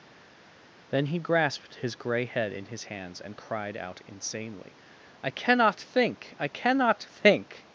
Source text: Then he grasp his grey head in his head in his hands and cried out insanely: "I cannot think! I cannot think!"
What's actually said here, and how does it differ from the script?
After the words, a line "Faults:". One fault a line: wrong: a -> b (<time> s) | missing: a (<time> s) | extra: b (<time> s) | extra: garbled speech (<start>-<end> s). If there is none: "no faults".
Then he grasped his grey head in his hands and cried out insanely: "I cannot think! I cannot think!"
Faults:
wrong: grasp -> grasped (1.2 s)
missing: head in his (2.9 s)